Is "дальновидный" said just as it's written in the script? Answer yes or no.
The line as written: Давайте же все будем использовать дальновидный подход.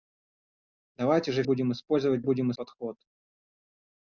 no